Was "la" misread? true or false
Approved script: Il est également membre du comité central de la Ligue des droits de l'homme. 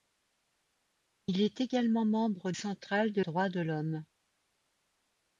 true